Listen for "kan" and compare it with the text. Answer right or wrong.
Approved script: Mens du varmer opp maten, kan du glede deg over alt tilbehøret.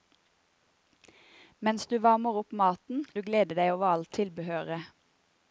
wrong